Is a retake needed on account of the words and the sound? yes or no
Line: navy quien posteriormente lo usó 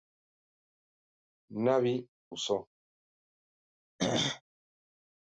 yes